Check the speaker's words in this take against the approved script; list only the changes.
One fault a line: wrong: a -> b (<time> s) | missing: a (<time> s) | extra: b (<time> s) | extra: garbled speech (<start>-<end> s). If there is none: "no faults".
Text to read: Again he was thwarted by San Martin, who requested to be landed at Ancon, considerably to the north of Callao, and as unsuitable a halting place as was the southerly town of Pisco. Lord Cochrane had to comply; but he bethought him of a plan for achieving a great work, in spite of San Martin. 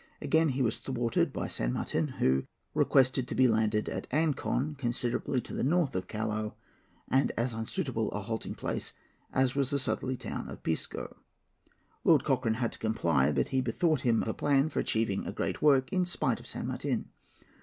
missing: of (14.2 s)